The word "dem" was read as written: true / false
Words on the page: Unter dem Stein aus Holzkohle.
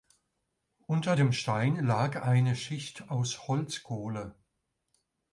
true